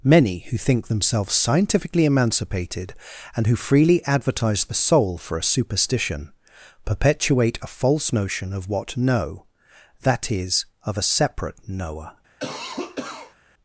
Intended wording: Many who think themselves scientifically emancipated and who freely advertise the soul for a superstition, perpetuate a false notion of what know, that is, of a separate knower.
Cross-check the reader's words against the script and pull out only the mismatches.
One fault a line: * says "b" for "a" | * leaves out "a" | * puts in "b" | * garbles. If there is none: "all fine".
all fine